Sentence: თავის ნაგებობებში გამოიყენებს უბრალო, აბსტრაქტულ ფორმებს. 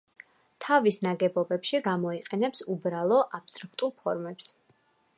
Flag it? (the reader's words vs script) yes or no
no